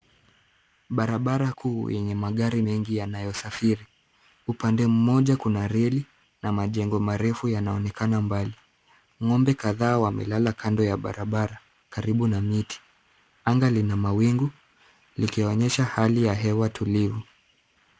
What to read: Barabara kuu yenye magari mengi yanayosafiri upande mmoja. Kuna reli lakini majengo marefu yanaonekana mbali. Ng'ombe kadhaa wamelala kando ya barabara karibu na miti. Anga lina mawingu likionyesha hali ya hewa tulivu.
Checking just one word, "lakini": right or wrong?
wrong